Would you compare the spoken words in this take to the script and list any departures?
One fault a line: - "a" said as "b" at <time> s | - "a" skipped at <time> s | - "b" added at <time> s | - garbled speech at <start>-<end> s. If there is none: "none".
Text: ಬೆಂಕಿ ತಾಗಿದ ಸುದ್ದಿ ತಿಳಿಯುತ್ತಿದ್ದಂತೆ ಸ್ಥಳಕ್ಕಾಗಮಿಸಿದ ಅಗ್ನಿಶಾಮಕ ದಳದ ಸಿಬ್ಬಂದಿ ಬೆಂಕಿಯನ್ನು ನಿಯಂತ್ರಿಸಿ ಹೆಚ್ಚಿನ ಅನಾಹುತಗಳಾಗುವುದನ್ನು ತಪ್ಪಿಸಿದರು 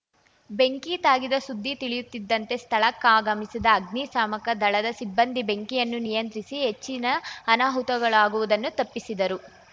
none